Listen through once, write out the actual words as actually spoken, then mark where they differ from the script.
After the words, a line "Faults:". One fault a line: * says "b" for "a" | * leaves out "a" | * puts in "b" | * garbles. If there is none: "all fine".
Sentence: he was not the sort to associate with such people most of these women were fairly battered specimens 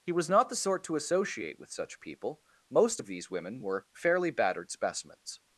he was not the sort to associate with such people most of these women were fairly battered specimens
Faults:
all fine